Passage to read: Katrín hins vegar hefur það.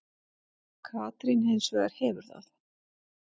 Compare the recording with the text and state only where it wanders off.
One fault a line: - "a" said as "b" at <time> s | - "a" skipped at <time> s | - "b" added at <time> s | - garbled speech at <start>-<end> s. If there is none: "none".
none